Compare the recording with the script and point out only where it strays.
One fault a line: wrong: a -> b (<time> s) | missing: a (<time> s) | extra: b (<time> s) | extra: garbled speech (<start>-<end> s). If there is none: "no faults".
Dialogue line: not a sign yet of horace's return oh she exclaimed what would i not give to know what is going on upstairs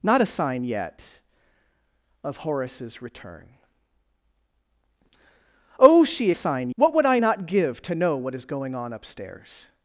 wrong: exclaimed -> sign (6.3 s)